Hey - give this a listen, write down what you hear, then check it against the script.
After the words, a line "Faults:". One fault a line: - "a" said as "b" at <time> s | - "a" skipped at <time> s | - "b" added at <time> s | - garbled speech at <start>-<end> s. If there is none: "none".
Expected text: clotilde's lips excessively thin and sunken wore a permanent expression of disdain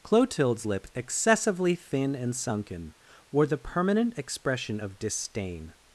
clotilde's lip excessively thin and sunken wore the permanent expression of disdain
Faults:
- "lips" said as "lip" at 0.6 s
- "a" said as "the" at 3.5 s